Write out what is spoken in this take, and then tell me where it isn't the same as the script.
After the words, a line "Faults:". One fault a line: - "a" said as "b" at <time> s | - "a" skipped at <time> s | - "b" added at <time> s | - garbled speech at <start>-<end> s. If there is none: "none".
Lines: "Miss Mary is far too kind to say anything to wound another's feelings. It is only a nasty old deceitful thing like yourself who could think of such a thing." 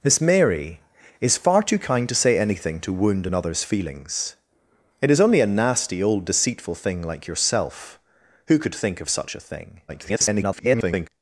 "Miss Mary is far too kind to say anything to wound another's feelings. It is only a nasty old deceitful thing like yourself who could think of such a thing." [garbled]
Faults:
- garbled speech at 9.9-11.1 s